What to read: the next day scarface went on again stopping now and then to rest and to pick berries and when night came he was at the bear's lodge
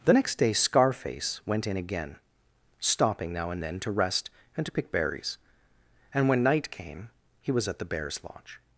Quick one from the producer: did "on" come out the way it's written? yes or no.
no